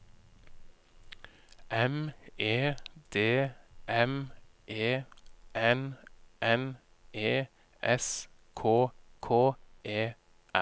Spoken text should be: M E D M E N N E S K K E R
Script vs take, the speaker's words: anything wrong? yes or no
no